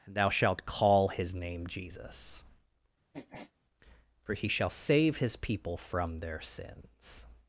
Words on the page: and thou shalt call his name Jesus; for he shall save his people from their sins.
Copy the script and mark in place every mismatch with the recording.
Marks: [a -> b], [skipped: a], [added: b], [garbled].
and thou shalt call his name Jesus; for he shall save his people from their sins.